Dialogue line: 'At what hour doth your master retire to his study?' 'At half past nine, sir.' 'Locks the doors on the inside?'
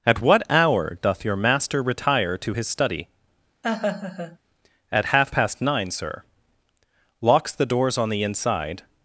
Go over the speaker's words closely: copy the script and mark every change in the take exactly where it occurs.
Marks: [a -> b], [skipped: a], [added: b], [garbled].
'At what hour doth your master retire to his study?' 'At half past nine, sir.' 'Locks the doors on the inside?'